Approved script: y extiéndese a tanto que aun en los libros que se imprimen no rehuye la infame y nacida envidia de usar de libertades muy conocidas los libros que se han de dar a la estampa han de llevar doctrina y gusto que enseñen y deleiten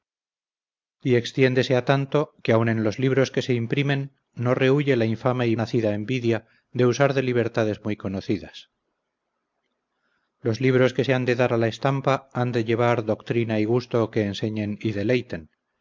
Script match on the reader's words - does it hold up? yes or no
yes